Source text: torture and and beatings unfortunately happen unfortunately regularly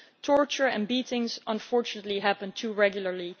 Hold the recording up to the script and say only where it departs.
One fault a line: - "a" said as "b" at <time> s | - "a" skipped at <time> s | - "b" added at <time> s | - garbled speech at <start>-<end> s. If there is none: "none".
- "and" skipped at 0.9 s
- "unfortunately" said as "too" at 2.5 s